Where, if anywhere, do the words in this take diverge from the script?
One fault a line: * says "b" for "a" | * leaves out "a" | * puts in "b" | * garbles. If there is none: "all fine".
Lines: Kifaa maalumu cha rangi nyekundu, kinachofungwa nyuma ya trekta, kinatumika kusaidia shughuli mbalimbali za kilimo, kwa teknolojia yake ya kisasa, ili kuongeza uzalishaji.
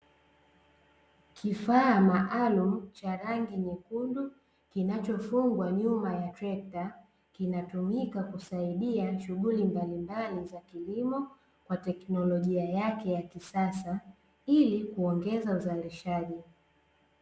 all fine